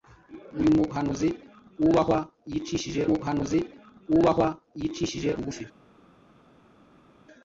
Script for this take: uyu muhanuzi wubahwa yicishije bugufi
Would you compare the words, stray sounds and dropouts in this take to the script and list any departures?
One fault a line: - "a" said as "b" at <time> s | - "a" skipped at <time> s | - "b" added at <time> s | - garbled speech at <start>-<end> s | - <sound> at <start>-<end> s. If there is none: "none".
- "muhanuzi wubahwa yicishije" added at 3.1 s